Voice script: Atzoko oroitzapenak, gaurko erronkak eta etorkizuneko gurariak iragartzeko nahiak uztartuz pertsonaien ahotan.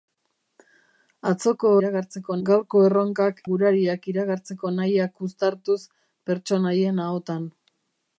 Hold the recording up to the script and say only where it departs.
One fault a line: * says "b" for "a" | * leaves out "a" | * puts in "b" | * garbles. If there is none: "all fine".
* says "iragartzeko" for "oroitzapenak"
* leaves out "eta etorkizuneko"